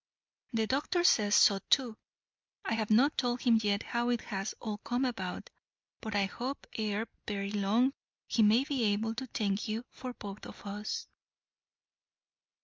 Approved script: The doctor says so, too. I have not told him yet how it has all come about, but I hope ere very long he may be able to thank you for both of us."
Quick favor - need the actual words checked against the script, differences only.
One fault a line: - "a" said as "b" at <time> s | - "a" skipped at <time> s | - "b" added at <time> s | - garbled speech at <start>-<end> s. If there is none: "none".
none